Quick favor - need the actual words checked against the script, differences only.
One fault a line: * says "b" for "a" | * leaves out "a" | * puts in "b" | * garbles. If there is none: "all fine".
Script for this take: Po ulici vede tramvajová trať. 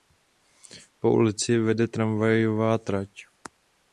all fine